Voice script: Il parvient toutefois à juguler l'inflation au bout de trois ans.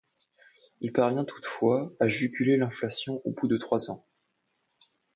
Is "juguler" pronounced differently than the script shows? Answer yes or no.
no